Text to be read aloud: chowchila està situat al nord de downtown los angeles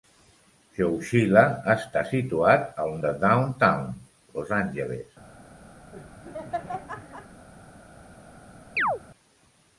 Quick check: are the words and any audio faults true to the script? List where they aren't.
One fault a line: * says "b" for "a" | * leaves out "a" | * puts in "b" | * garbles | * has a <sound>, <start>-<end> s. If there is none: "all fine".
* leaves out "nord"
* has a laugh, 5.9-7.5 s
* has a chirp, 8.8-9.0 s